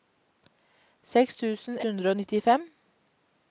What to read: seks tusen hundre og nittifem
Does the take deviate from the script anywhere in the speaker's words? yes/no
no